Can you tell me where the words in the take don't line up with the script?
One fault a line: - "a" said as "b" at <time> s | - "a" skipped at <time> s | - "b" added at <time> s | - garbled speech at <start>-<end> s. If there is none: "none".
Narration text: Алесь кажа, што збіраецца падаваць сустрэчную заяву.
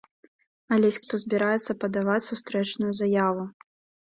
- "кажа" skipped at 1.0 s